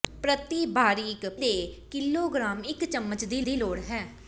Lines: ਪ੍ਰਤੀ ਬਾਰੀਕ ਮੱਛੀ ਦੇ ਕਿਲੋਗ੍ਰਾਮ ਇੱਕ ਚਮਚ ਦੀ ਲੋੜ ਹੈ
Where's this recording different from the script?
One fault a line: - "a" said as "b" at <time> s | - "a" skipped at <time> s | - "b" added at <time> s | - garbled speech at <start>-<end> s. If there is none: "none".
- "ਮੱਛੀ" skipped at 1.2 s
- "ਦੀ" added at 3.4 s